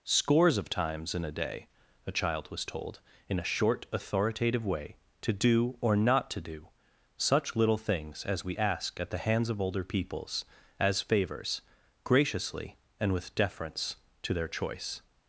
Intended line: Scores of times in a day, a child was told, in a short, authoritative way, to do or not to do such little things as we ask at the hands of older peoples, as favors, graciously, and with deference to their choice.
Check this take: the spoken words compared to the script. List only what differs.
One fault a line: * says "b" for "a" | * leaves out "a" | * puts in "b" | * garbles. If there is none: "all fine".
all fine